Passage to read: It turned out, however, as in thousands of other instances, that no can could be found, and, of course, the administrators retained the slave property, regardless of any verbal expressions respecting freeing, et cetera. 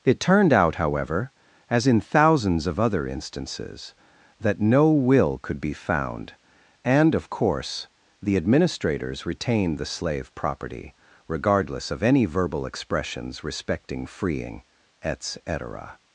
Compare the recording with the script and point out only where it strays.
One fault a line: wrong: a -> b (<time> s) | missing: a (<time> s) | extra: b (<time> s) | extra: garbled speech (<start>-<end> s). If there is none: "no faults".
wrong: can -> will (4.9 s)